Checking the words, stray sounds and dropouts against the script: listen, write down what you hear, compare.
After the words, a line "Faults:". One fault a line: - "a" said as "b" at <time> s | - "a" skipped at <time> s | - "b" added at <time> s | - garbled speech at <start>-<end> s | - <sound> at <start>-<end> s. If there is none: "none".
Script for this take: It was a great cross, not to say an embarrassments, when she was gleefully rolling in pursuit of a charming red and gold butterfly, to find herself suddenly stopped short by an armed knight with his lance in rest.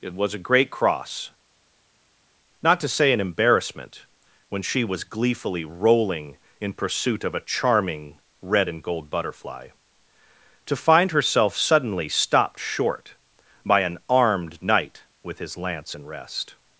It was a great cross, not to say an embarrassment, when she was gleefully rolling in pursuit of a charming red and gold butterfly, to find herself suddenly stopped short by an armed knight with his lance in rest.
Faults:
- "embarrassments" said as "embarrassment" at 3.2 s